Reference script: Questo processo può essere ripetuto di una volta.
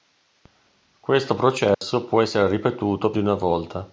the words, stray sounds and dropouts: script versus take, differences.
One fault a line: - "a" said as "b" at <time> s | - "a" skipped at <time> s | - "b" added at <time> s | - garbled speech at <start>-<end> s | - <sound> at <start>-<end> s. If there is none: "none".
- dropout at 1.7-1.8 s